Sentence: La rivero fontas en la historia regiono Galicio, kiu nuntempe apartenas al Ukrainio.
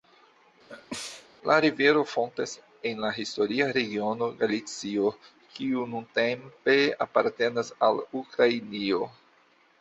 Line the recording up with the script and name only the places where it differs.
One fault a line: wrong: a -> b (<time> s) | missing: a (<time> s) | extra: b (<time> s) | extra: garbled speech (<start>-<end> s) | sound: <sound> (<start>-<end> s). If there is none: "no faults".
sound: sneeze (0.7-1.3 s)